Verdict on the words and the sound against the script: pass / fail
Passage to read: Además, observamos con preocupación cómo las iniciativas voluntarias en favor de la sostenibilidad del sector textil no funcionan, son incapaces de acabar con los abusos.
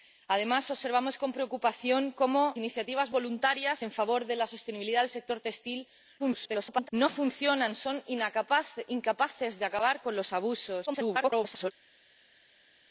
fail